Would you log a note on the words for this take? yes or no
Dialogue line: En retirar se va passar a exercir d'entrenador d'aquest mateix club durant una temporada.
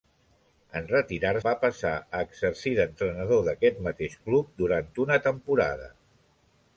yes